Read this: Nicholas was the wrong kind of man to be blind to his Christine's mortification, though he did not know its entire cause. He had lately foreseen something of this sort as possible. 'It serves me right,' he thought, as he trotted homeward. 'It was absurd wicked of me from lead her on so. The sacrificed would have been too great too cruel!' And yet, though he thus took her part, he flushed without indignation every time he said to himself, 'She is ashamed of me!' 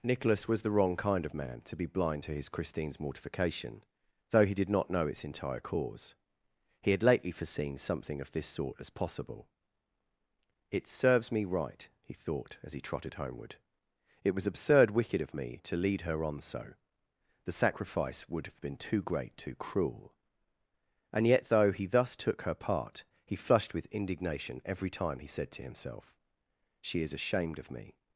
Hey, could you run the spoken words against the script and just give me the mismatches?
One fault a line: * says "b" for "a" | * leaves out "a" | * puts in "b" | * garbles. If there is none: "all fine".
* says "to" for "from"
* says "sacrifice" for "sacrificed"
* says "with" for "without"